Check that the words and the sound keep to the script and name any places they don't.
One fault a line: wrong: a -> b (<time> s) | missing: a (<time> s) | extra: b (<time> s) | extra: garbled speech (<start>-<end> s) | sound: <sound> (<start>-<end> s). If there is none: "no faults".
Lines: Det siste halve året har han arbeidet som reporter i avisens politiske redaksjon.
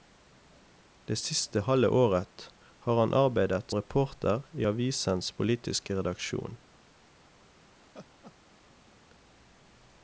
missing: som (3.7 s)
sound: laugh (7.8-8.9 s)